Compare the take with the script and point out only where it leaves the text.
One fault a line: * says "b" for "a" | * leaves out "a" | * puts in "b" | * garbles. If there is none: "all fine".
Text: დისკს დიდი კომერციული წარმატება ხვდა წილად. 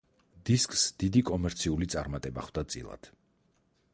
all fine